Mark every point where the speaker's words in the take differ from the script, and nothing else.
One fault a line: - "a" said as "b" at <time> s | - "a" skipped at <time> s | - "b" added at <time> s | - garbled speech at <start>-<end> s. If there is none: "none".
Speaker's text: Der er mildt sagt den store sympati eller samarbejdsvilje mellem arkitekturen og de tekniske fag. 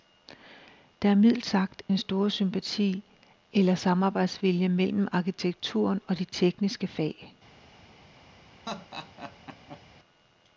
none